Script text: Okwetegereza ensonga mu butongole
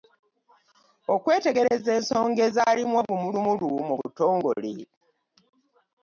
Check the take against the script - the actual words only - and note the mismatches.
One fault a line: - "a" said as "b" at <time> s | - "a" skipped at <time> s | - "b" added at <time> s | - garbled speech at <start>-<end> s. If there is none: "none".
- "ezaalimu obumulumulu" added at 2.5 s